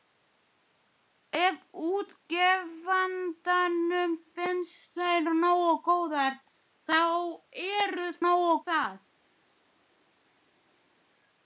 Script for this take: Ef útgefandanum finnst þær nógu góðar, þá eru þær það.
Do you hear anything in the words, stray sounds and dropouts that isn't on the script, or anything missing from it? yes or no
yes